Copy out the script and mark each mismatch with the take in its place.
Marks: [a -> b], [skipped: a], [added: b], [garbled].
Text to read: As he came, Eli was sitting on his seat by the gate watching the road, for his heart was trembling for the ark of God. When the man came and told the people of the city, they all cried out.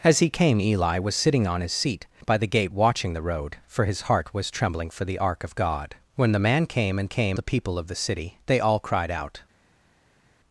As he came, Eli was sitting on his seat by the gate watching the road, for his heart was trembling for the ark of God. When the man came and [told -> came] the people of the city, they all cried out.